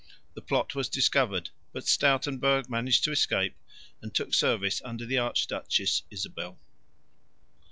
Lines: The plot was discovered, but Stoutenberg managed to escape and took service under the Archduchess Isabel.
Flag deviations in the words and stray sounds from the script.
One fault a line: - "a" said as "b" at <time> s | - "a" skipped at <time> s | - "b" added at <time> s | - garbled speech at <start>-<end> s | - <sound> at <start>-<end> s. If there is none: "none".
none